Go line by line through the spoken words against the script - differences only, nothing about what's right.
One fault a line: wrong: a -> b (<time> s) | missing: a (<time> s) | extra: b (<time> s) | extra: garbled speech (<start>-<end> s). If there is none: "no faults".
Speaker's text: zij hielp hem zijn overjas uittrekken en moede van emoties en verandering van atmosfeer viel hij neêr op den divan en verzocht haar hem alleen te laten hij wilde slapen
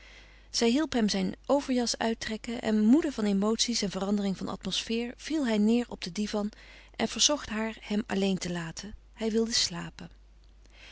no faults